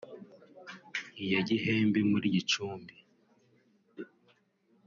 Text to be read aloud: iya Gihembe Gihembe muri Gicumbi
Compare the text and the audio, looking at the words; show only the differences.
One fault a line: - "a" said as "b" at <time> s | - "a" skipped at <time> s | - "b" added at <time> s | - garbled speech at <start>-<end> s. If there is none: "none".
- "Gihembe" skipped at 2.0 s